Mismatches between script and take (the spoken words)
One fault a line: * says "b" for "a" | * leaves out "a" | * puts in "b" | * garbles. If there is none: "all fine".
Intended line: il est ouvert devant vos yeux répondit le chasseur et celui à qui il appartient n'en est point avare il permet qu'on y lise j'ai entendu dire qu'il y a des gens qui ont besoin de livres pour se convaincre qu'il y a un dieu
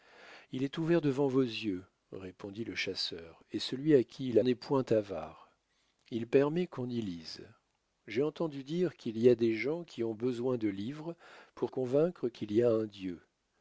* leaves out "appartient n'en"
* leaves out "se"